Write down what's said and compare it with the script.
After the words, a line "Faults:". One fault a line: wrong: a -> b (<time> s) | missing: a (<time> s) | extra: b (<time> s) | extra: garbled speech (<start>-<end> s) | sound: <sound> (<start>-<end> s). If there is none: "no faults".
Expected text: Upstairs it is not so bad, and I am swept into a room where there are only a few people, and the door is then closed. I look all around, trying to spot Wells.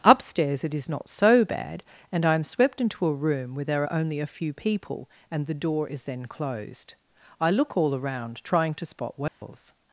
Upstairs it is not so bad, and I am swept into a room where there are only a few people, and the door is then closed. I look all around, trying to spot Wells.
Faults:
sound: dropout (9.3-9.4 s)